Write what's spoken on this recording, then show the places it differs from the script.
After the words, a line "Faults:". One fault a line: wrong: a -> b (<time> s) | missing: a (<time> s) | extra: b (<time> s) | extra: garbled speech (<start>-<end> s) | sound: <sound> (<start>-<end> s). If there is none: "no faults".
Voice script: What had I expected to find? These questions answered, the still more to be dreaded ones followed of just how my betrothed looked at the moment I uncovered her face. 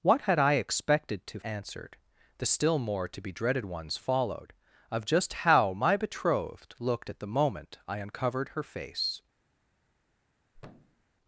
What had I expected to answered, the still more to be dreaded ones followed of just how my betrothed looked at the moment I uncovered her face.
Faults:
missing: find These questions (1.4 s)
sound: thud (10.5-11.1 s)